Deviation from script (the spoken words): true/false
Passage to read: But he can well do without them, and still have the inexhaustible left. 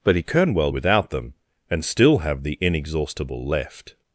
true